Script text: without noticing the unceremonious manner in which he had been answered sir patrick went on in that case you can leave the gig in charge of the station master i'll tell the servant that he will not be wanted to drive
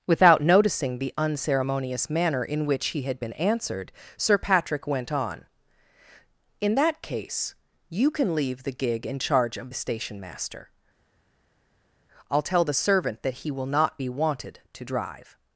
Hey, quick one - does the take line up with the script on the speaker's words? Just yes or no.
yes